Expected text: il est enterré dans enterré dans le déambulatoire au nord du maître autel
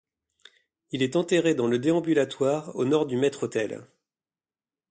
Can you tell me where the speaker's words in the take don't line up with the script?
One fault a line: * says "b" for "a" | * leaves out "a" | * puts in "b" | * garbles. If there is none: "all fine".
* leaves out "enterré dans"